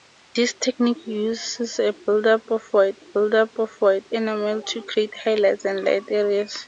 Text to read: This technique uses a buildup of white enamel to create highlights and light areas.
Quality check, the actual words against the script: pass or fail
fail